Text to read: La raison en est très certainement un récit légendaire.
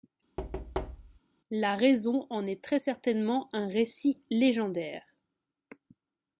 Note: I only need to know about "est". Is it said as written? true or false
true